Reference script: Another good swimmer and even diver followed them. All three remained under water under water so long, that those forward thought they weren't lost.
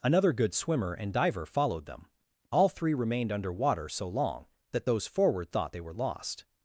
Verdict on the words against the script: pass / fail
fail